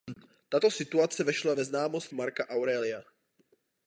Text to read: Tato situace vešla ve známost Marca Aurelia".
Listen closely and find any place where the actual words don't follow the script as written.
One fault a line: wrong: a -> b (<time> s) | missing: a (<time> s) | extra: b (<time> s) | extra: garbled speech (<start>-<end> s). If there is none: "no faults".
no faults